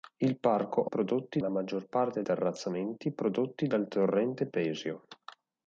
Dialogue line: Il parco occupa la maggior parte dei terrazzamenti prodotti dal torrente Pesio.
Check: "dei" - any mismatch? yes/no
yes